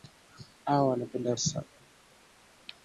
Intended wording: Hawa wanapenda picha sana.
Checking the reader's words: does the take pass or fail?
fail